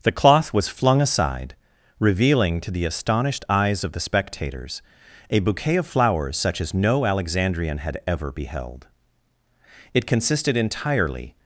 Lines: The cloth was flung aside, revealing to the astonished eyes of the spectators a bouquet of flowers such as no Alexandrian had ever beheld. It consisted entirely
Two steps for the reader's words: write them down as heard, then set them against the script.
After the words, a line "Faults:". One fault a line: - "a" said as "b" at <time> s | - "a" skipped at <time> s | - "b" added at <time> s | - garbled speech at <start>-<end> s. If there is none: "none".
The cloth was flung aside, revealing to the astonished eyes of the spectators a bouquet of flowers such as no Alexandrian had ever beheld. It consisted entirely
Faults:
none